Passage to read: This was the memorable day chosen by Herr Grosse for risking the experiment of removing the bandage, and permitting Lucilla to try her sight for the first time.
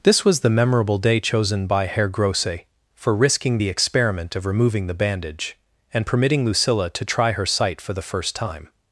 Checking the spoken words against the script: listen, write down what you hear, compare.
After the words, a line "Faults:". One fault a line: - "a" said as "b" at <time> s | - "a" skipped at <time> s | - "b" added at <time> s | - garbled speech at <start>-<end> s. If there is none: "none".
This was the memorable day chosen by Herr Grosse for risking the experiment of removing the bandage, and permitting Lucilla to try her sight for the first time.
Faults:
none